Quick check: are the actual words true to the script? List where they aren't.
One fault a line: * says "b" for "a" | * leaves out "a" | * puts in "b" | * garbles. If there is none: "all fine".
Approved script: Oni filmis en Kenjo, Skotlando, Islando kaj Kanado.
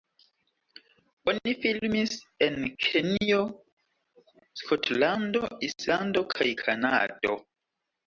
all fine